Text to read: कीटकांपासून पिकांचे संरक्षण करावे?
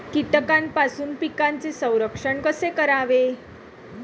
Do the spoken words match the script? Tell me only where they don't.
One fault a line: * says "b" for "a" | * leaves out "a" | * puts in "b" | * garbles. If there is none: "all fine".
* puts in "कसे"